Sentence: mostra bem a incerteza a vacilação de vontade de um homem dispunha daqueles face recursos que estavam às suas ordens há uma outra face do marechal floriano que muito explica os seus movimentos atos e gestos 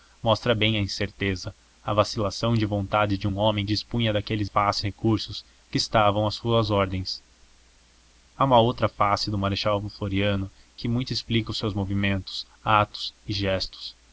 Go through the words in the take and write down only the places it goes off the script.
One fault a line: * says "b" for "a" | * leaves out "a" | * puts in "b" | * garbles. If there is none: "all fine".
all fine